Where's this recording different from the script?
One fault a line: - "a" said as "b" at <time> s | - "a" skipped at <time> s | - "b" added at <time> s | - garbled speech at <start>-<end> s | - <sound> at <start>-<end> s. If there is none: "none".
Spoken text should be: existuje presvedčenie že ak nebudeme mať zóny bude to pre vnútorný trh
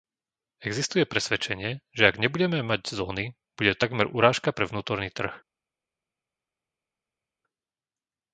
- "takmer urážka" added at 3.8 s